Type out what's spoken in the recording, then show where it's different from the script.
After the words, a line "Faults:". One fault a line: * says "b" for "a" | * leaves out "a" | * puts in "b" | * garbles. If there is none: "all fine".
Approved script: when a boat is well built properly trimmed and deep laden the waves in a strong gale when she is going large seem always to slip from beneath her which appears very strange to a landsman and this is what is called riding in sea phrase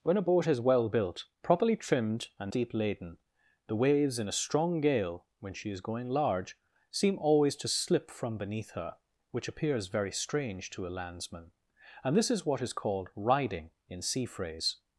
when a boat is well built properly trimmed and deep laden the waves in a strong gale when she is going large seem always to slip from beneath her which appears very strange to a landsman and this is what is called riding in sea phrase
Faults:
all fine